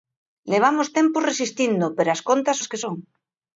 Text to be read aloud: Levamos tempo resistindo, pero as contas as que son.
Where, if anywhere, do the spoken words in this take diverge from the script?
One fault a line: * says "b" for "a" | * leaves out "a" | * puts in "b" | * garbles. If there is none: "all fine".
all fine